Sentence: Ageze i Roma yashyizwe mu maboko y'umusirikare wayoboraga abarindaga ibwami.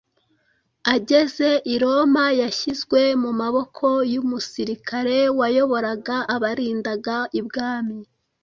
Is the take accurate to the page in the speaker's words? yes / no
yes